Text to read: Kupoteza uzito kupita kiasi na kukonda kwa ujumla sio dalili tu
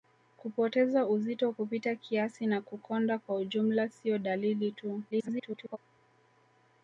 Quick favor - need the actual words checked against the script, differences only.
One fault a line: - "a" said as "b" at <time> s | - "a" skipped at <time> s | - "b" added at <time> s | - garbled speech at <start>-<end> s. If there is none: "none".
- garbled speech at 5.1-5.8 s